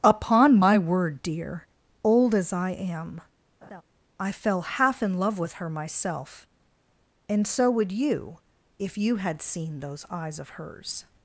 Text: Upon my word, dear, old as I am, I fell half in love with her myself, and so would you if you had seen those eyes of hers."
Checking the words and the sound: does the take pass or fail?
fail